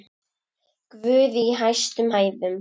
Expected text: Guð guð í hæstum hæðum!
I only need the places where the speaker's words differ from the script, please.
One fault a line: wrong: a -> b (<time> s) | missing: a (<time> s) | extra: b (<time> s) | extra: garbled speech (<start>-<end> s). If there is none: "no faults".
missing: guð (1.4 s)